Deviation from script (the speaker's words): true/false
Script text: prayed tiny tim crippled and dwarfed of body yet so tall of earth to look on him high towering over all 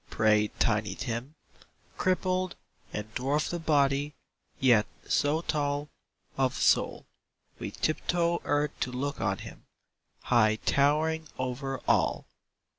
true